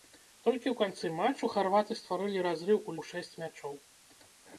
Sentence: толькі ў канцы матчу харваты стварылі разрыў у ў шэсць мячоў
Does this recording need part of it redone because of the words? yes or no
no